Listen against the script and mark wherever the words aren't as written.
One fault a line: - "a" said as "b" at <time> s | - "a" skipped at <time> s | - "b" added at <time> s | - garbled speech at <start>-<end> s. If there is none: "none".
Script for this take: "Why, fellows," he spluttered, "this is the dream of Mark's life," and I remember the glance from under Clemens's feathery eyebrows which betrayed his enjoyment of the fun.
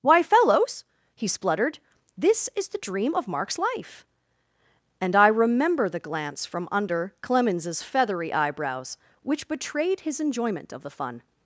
none